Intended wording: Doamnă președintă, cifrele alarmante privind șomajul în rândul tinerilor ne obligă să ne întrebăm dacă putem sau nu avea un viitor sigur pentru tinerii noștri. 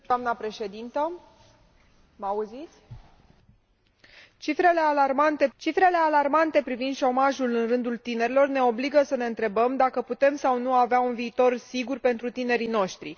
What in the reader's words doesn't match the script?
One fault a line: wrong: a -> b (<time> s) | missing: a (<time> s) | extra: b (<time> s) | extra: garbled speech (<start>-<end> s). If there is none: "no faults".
extra: cifrele alarmante (5.6 s)